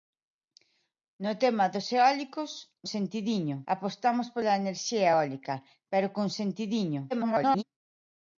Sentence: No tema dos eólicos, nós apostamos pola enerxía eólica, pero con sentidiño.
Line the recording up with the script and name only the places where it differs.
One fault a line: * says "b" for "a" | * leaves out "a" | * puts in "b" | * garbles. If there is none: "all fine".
* says "sentidiño" for "nós"
* garbles